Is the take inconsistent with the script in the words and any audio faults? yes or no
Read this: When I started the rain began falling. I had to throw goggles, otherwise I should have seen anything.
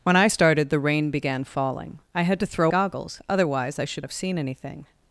no